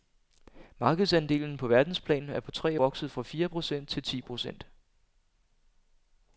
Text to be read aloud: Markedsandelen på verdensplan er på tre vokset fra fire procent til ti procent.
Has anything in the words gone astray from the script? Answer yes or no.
no